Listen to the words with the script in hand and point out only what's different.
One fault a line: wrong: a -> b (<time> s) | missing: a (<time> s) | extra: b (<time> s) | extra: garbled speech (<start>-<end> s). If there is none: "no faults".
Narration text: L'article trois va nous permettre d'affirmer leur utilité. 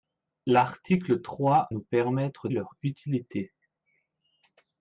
missing: va (1.7 s)
missing: d'affirmer (2.5 s)